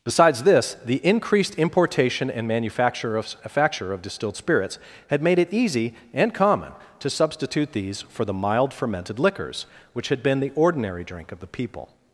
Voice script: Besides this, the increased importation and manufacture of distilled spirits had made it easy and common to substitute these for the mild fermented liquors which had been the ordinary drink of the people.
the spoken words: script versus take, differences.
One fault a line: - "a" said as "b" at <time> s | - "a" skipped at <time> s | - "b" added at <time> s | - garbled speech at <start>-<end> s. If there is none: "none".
- "manufacture of" added at 3.4 s